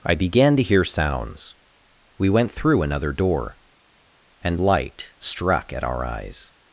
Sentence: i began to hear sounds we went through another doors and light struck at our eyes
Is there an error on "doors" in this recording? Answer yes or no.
yes